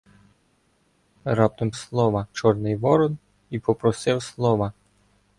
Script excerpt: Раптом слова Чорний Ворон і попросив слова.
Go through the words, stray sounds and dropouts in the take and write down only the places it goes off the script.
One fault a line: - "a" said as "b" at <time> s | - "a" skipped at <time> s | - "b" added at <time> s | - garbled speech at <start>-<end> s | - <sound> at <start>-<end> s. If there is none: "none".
none